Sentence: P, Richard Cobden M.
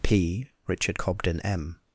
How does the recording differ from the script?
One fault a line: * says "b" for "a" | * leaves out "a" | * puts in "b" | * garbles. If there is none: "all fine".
all fine